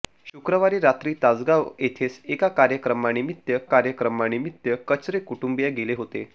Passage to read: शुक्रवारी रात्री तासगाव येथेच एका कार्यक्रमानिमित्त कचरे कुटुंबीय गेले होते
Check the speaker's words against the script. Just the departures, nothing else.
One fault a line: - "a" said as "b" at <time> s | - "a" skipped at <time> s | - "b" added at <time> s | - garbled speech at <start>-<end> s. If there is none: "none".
- "कार्यक्रमानिमित्त" added at 3.7 s